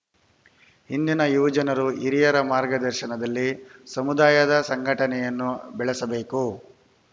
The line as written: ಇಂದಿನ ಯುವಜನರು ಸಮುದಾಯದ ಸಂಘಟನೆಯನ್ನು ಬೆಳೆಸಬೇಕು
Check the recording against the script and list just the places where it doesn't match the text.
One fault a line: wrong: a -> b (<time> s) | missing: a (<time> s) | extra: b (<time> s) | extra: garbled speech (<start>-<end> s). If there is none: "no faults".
extra: ಹಿರಿಯರ ಮಾರ್ಗದರ್ಶನದಲ್ಲಿ (2.0 s)